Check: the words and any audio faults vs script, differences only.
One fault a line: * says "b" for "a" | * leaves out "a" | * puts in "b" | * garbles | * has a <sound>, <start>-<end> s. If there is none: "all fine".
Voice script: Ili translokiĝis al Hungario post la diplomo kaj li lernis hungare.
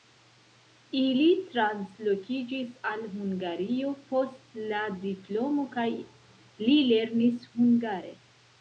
all fine